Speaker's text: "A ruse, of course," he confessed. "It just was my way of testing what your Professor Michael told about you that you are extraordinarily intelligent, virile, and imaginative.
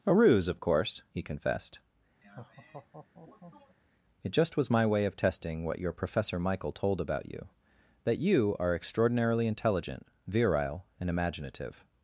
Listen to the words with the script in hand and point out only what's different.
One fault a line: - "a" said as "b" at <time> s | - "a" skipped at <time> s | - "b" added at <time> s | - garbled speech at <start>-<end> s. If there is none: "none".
none